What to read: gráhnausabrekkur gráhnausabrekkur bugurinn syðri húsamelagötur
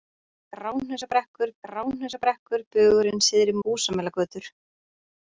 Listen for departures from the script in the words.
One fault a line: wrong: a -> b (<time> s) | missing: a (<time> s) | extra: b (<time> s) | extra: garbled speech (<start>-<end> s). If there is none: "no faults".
no faults